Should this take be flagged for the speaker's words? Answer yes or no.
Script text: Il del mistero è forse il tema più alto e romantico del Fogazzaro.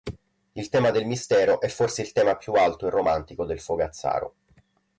yes